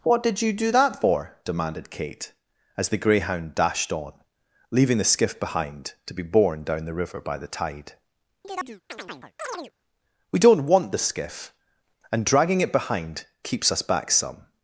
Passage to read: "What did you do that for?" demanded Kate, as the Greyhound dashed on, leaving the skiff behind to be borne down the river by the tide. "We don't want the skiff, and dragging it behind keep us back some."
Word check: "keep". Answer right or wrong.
wrong